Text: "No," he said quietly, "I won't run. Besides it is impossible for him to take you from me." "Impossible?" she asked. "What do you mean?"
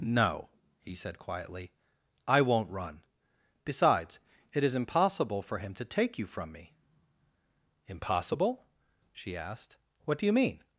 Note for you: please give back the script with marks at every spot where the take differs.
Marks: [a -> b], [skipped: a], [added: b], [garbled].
"No," he said quietly, "I won't run. Besides it is impossible for him to take you from me." "Impossible?" she asked. "What do you mean?"